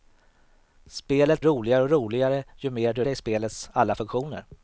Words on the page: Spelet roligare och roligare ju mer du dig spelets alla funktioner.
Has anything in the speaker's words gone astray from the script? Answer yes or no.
no